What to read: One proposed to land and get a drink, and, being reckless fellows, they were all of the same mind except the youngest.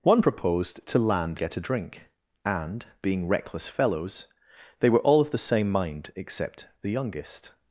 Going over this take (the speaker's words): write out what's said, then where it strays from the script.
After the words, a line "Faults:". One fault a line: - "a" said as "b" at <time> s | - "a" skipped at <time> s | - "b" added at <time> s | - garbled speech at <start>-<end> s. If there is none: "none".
One proposed to land get a drink, and, being reckless fellows, they were all of the same mind except the youngest.
Faults:
- "and" skipped at 1.4 s